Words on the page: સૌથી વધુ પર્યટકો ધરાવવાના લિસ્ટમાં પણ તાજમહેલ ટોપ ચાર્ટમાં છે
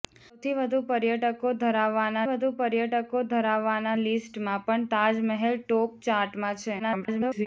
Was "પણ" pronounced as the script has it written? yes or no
yes